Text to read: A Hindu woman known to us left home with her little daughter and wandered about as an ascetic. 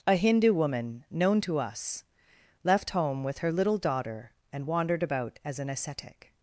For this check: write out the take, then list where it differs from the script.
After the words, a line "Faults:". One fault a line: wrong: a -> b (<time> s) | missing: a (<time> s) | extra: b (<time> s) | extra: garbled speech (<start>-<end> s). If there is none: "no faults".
A Hindu woman known to us left home with her little daughter and wandered about as an ascetic.
Faults:
no faults